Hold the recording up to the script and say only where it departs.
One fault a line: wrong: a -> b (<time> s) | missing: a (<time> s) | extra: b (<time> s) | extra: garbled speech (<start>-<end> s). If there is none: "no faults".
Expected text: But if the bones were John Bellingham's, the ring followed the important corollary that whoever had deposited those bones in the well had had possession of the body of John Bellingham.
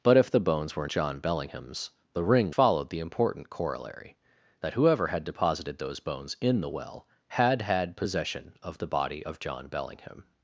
no faults